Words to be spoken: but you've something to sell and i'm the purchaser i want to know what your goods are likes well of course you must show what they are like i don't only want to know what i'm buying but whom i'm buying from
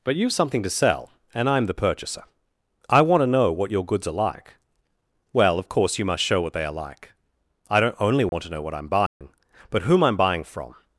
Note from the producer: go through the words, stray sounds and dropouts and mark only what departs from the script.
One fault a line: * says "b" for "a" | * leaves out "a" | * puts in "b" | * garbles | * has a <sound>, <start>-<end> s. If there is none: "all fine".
* says "like" for "likes"
* has a dropout, 8.3-8.3 s
* has a dropout, 9.1-9.2 s